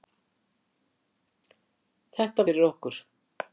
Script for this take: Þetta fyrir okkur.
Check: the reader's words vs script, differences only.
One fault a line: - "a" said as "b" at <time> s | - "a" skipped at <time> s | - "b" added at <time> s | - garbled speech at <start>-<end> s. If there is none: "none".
none